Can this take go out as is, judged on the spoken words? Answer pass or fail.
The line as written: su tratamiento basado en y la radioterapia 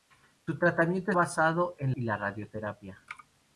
pass